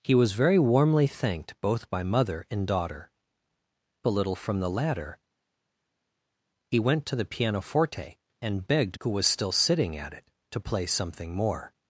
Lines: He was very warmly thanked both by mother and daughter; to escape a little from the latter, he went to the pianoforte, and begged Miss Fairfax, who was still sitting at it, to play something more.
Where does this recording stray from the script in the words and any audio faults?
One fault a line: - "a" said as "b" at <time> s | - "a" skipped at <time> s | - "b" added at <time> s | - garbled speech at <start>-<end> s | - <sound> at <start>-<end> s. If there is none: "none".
- "to escape" skipped at 3.1 s
- "Miss Fairfax" skipped at 9.0 s